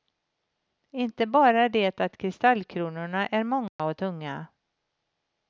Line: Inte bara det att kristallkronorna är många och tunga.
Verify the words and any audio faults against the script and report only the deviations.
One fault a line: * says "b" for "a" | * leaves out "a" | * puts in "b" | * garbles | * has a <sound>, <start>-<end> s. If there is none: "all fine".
* has a dropout, 3.7-3.8 s